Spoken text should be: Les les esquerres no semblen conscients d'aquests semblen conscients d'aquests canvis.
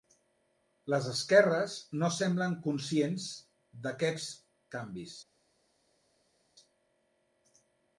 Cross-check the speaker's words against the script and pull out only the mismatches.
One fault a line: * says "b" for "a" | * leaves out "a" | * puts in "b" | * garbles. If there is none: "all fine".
* leaves out "les"
* leaves out "semblen conscients d'aquests"